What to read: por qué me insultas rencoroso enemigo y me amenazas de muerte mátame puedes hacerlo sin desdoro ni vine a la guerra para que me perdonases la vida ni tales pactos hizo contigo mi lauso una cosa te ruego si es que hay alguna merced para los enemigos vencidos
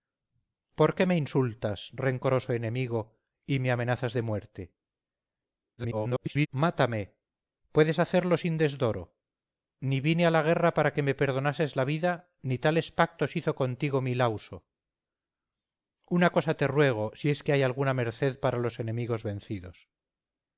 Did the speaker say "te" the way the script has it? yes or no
yes